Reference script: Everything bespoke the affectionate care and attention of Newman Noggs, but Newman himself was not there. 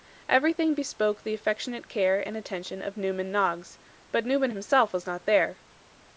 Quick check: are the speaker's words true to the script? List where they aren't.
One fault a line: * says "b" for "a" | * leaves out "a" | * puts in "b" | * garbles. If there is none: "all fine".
all fine